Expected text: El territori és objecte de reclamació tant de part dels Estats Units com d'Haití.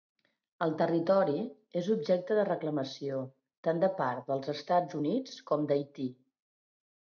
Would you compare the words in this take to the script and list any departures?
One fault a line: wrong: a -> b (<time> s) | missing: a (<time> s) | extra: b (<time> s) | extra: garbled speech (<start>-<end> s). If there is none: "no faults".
no faults